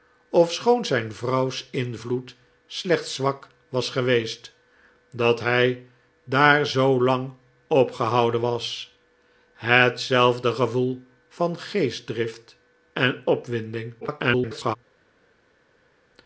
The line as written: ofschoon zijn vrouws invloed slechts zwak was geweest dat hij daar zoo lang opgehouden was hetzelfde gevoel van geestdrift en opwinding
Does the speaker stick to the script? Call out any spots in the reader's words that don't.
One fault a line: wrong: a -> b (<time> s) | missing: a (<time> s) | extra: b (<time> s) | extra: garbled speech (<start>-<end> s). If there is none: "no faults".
extra: garbled speech (14.0-14.8 s)